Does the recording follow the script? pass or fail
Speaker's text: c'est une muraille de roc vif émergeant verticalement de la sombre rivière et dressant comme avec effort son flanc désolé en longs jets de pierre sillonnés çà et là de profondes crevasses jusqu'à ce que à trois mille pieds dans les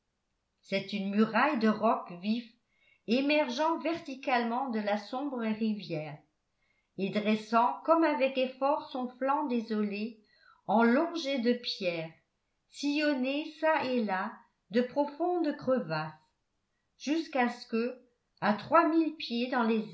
pass